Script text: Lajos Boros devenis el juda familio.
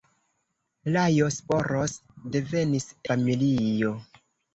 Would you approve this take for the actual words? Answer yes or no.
no